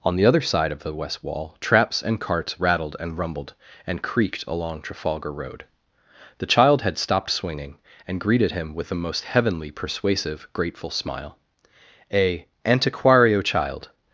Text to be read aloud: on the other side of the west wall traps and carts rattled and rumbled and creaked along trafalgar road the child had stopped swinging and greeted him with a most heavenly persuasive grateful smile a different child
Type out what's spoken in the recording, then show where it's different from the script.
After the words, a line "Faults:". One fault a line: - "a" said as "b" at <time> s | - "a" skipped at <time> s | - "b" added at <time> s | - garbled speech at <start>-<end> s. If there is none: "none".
on the other side of the west wall traps and carts rattled and rumbled and creaked along trafalgar road the child had stopped swinging and greeted him with a most heavenly persuasive grateful smile a antiquario child
Faults:
- "different" said as "antiquario" at 12.7 s